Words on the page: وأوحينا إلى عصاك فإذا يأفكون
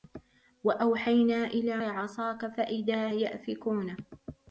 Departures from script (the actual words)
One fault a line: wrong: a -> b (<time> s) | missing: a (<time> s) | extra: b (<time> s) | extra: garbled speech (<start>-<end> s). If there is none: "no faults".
no faults